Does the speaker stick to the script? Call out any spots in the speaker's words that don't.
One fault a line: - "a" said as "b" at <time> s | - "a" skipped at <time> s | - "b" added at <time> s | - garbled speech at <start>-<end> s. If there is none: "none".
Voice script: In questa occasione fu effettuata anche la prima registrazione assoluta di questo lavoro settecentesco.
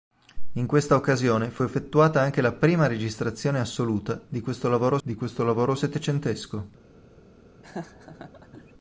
- "di questo lavoro" added at 5.0 s